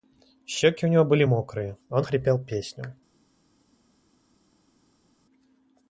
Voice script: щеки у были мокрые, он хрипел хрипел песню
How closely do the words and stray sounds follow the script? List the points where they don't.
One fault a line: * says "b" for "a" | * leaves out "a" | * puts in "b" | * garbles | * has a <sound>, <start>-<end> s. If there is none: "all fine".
* puts in "него"
* leaves out "хрипел"